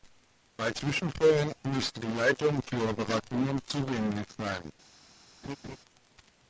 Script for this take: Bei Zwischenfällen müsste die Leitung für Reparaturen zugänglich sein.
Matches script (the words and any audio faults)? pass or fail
fail